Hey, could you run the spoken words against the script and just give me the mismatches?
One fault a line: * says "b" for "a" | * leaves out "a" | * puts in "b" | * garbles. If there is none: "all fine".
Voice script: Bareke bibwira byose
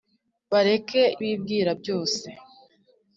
all fine